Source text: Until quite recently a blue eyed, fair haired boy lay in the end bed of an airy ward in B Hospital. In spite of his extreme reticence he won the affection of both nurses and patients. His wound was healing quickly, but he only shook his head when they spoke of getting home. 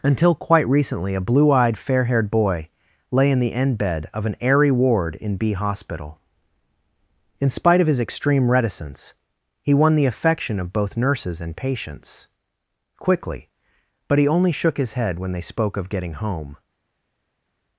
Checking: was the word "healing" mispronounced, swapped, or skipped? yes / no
yes